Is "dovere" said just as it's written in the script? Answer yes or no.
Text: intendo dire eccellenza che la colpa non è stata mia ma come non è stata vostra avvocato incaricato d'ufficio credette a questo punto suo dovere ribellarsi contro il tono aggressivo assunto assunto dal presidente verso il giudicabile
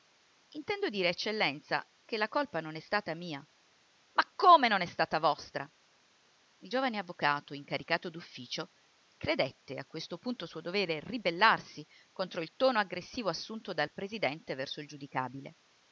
yes